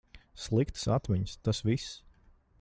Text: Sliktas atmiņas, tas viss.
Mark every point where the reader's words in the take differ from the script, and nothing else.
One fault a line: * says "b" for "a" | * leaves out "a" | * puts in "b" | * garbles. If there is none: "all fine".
all fine